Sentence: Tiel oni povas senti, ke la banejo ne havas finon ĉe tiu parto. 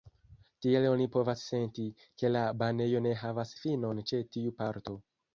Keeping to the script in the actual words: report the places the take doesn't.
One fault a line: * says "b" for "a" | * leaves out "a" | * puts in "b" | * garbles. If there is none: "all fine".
all fine